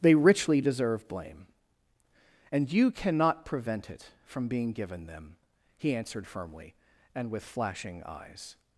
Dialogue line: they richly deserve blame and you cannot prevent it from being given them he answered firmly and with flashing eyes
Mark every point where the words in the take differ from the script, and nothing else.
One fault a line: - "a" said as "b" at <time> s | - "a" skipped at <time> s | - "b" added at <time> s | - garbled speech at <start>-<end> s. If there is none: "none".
none